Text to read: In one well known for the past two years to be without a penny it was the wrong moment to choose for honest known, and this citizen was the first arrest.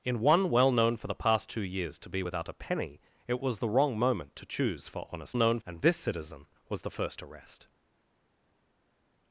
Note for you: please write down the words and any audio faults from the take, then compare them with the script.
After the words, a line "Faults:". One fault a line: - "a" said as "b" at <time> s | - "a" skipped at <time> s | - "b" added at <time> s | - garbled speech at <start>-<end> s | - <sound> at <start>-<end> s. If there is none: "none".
In one well known for the past two years to be without a penny it was the wrong moment to choose for honest known, and this citizen was the first arrest.
Faults:
none